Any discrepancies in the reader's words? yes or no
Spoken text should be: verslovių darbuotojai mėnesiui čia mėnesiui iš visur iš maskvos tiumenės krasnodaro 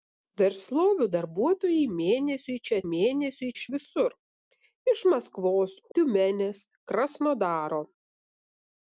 no